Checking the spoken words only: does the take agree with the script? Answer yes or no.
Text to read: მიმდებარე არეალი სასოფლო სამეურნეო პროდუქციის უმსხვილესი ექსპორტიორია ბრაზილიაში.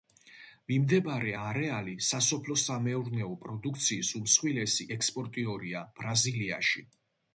yes